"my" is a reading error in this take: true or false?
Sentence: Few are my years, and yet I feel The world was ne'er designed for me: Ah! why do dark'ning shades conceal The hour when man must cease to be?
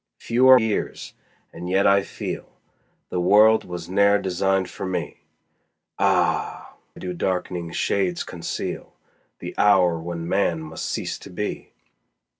true